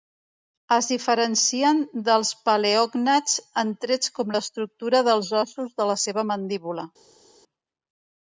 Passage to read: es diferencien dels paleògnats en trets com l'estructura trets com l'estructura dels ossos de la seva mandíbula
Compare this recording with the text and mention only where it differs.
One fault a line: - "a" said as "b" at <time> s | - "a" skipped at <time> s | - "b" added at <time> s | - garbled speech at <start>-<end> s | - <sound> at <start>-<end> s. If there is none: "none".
- "trets com l'estructura" skipped at 5.0 s